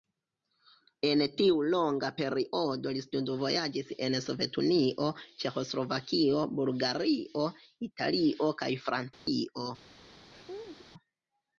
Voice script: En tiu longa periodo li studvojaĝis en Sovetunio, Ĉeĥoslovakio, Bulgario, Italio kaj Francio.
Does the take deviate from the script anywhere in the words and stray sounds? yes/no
yes